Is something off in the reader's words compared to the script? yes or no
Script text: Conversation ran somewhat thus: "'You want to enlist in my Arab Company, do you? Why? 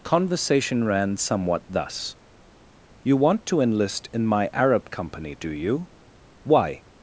no